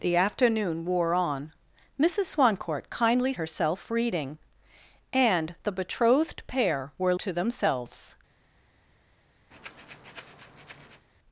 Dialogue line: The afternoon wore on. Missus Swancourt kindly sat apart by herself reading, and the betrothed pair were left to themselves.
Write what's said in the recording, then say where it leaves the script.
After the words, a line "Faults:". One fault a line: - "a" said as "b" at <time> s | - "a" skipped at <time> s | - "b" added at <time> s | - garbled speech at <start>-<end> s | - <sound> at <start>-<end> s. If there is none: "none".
The afternoon wore on. Missus Swancourt kindly herself reading, and the betrothed pair were to themselves.
Faults:
- "sat apart by" skipped at 3.3 s
- "left" skipped at 7.1 s
- breath at 9.5-11.1 s